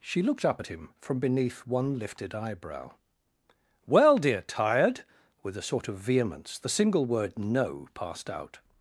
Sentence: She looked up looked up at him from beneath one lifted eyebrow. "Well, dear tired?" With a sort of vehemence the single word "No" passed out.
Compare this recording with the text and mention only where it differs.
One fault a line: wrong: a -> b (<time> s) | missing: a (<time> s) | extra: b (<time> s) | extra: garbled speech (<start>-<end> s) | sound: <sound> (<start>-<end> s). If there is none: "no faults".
missing: looked up (0.6 s)